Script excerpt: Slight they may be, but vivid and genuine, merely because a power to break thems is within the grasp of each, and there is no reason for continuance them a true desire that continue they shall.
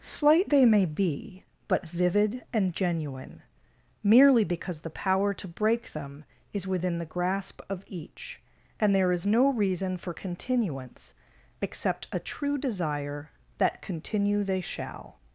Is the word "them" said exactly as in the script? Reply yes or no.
no